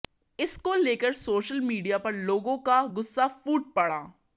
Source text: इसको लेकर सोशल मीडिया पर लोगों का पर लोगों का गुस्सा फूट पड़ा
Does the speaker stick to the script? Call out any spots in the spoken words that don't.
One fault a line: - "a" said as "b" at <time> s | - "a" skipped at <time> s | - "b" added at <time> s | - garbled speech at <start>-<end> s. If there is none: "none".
- "पर लोगों का" skipped at 2.9 s